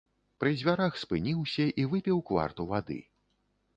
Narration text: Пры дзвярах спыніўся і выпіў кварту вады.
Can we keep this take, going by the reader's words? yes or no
yes